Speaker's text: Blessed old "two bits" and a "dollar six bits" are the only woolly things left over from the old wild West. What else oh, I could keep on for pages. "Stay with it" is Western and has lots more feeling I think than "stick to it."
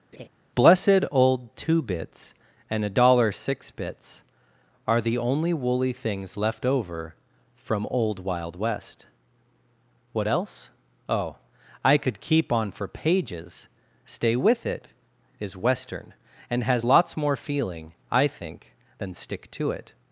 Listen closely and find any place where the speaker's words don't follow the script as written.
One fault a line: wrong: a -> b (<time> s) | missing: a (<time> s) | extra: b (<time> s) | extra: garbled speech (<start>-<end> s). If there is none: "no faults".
missing: the (7.9 s)